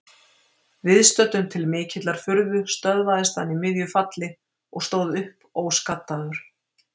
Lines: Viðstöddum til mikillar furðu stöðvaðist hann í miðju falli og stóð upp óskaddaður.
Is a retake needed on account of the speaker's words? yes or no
no